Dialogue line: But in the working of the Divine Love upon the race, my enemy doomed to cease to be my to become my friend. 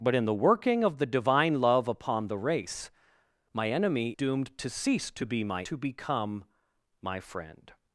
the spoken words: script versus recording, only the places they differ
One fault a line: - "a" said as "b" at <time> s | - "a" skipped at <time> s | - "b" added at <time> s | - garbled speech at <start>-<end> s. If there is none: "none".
none